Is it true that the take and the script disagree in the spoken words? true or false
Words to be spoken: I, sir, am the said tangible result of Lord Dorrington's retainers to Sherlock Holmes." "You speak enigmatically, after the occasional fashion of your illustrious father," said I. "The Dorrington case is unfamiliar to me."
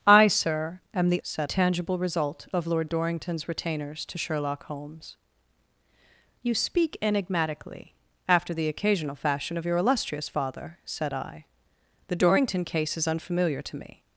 false